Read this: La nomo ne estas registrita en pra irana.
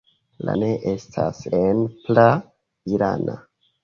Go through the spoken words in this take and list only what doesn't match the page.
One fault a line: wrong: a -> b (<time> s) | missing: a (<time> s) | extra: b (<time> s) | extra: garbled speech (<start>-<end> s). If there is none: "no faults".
missing: nomo (0.5 s)
missing: registrita (1.4 s)